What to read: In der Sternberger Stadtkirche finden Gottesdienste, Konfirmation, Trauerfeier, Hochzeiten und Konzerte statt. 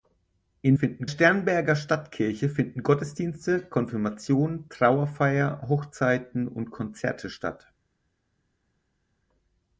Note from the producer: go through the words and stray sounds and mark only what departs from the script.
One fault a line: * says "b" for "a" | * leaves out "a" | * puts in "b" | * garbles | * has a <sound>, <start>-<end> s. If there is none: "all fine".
* says "finden" for "der"